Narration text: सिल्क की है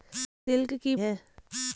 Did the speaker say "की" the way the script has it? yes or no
yes